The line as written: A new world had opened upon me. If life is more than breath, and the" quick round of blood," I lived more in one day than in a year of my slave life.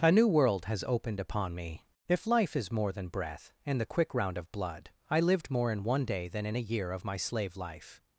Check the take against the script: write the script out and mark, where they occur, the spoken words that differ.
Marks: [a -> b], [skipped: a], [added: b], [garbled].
A new world [had -> has] opened upon me. If life is more than breath, and the" quick round of blood," I lived more in one day than in a year of my slave life.